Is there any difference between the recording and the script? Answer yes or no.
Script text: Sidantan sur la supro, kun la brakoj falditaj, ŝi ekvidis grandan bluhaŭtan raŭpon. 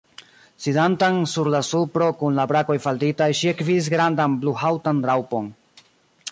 no